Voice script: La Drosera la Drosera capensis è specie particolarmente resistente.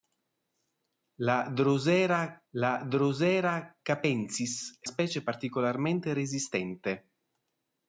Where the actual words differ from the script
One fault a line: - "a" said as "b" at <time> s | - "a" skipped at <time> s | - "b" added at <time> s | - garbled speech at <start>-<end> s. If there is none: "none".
none